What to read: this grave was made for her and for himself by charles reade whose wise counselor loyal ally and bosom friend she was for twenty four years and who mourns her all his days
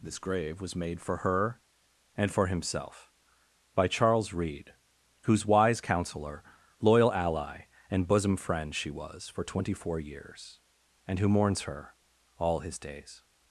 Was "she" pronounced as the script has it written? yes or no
yes